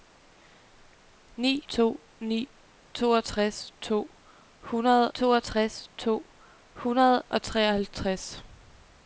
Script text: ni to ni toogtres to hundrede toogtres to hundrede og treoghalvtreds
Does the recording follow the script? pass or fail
pass